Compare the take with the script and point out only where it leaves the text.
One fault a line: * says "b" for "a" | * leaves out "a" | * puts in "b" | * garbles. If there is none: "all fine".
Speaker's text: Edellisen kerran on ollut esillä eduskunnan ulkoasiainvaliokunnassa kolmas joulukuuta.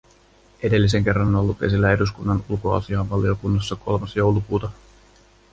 all fine